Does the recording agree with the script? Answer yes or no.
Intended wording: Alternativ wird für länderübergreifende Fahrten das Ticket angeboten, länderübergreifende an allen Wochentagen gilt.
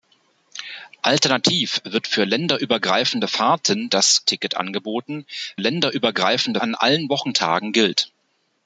yes